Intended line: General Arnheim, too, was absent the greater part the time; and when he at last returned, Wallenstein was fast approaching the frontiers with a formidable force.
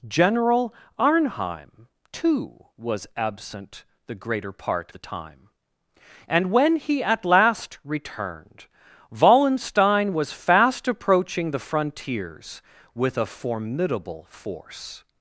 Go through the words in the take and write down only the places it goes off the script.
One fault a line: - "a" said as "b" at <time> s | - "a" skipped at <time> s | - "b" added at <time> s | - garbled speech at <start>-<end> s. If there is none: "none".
none